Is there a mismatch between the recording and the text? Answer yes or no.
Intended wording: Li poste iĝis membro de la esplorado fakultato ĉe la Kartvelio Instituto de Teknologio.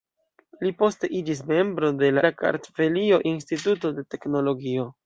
yes